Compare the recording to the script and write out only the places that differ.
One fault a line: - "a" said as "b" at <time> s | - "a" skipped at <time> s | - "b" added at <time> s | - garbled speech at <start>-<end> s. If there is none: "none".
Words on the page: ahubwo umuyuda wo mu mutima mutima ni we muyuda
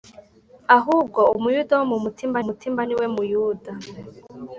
none